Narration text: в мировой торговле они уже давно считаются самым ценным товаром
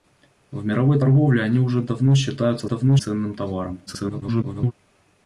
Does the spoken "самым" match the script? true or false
false